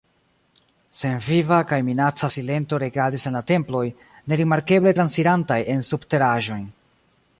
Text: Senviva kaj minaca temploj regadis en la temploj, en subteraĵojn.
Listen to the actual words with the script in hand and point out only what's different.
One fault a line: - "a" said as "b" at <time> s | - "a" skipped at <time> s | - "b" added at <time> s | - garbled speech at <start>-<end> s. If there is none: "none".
- "temploj" said as "silento" at 2.3 s
- "nerimarkeble transirantaj" added at 4.3 s